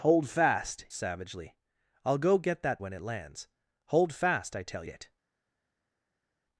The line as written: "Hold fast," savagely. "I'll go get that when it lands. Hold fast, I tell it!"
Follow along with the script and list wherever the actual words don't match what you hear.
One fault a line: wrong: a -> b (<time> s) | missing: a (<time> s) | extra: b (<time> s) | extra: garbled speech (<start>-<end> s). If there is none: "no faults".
no faults